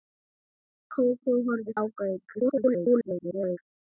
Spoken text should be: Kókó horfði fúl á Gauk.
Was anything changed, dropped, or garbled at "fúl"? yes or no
yes